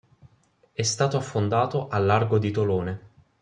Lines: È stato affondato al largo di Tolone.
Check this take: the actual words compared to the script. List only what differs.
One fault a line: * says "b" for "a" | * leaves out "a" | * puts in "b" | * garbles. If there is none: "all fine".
all fine